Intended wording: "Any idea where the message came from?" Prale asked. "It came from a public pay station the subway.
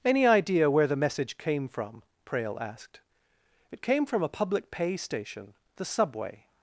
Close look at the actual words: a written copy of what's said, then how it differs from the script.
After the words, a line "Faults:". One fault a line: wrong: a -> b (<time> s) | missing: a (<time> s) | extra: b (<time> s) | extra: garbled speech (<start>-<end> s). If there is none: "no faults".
"Any idea where the message came from?" Prale asked. "It came from a public pay station the subway.
Faults:
no faults